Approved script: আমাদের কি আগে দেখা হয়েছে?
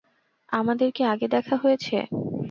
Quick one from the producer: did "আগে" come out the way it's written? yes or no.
yes